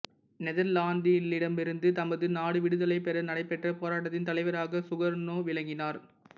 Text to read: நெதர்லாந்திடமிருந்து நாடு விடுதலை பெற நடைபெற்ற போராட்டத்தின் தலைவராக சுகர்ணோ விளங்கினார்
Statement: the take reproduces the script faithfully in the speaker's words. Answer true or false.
false